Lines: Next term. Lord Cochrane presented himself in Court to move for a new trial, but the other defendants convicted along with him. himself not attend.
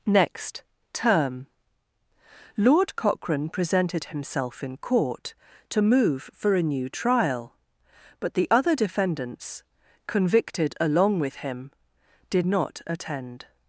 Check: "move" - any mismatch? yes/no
no